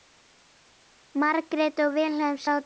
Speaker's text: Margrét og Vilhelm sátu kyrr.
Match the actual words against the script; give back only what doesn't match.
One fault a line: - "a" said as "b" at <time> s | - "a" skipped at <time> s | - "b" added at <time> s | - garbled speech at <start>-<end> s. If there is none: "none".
none